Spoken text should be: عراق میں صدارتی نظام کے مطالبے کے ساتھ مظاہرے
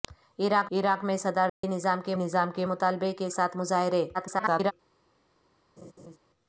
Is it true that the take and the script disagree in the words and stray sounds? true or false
true